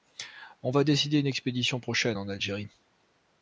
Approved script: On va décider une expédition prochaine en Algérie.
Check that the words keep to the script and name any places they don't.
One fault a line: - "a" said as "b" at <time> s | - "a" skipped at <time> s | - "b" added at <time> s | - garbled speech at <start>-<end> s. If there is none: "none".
none